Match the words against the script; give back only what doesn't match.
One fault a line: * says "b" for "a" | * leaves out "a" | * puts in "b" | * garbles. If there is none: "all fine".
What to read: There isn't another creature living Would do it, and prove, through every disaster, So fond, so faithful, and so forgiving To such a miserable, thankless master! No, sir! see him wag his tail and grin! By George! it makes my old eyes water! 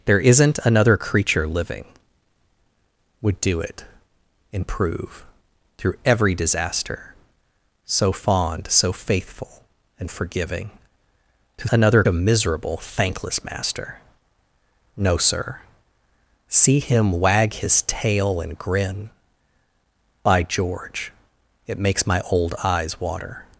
* leaves out "so"
* says "another" for "such"